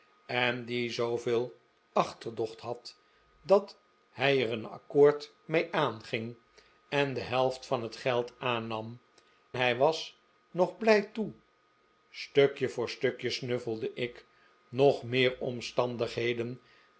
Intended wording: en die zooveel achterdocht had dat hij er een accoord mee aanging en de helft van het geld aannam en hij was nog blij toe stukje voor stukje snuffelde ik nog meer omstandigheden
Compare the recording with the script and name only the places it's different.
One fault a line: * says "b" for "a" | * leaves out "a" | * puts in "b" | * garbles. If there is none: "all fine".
* leaves out "en"